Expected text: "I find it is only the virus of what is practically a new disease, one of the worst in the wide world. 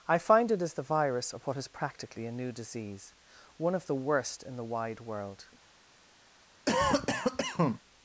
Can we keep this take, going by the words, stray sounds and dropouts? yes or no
no